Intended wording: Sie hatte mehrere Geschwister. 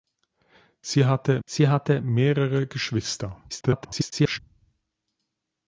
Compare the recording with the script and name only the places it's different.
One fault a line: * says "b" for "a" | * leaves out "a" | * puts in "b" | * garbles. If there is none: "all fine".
* puts in "sie hatte"
* garbles